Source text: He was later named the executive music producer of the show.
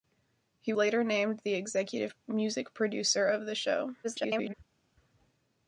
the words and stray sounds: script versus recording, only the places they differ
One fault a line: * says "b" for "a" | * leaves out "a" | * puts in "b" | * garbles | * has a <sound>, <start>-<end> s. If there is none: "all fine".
* leaves out "was"
* garbles